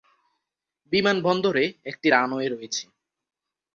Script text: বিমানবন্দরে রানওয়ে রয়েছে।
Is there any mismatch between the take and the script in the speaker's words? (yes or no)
yes